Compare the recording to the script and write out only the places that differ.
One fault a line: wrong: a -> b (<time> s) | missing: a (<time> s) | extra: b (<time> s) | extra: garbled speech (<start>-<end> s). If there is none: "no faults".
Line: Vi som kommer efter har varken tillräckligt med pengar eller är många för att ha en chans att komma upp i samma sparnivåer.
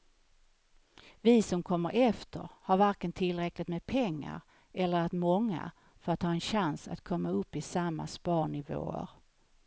no faults